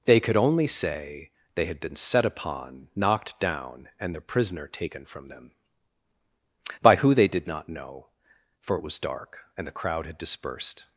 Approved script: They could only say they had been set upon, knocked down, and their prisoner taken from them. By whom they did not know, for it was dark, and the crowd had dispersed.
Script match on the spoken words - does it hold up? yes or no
no